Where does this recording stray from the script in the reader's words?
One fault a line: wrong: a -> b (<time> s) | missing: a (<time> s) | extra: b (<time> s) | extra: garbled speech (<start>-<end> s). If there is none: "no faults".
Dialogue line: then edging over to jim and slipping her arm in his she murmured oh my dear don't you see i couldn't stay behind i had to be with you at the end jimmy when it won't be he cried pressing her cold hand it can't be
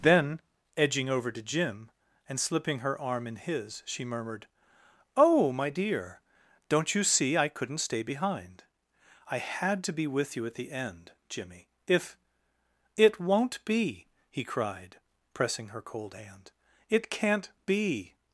wrong: when -> if (11.9 s)